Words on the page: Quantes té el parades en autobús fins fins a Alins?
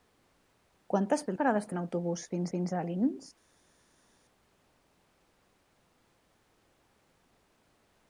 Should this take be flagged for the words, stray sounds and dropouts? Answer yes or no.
no